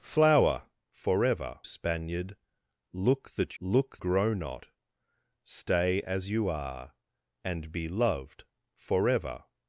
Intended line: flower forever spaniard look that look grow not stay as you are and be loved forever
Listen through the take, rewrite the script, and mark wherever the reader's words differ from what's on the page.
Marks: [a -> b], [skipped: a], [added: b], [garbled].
flower forever spaniard look that look grow not stay as you are and be loved forever